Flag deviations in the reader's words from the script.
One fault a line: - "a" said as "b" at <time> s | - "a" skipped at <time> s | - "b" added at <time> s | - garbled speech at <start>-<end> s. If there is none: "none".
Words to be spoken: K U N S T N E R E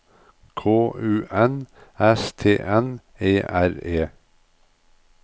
none